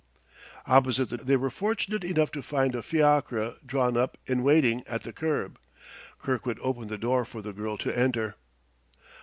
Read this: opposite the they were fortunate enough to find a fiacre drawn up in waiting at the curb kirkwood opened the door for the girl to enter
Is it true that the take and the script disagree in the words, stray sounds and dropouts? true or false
false